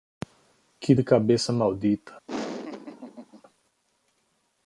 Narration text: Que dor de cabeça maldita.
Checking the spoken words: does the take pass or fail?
fail